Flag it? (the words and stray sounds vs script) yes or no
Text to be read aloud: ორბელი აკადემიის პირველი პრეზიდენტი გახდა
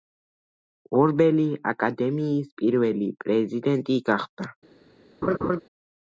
yes